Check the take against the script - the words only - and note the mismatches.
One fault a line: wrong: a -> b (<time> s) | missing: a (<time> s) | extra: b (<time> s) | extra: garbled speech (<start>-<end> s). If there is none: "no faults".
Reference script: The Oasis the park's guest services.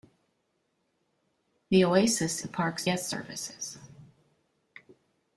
no faults